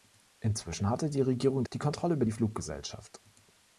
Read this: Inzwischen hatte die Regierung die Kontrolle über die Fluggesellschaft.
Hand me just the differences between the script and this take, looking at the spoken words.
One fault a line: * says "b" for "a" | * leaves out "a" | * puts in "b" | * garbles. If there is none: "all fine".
all fine